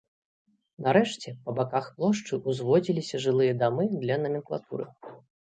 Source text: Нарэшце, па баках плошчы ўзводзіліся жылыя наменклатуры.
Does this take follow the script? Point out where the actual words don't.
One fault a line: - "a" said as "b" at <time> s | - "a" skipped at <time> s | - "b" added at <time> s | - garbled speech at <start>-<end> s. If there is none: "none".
- "дамы для" added at 3.6 s